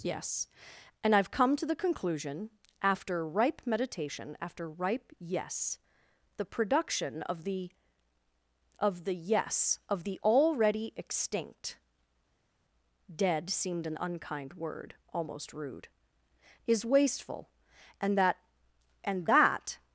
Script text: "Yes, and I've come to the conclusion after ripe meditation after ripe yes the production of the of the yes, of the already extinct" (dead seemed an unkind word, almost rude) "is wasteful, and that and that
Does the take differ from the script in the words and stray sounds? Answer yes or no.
no